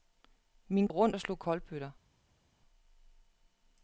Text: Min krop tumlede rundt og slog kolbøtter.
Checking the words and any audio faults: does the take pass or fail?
fail